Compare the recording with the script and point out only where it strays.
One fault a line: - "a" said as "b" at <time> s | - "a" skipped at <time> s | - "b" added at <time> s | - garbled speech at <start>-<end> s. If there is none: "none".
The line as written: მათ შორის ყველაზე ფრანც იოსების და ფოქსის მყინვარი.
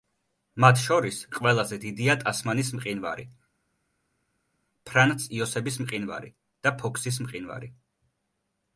- "დიდია ტასმანის მყინვარი" added at 1.8 s
- "მყინვარი" added at 5.9 s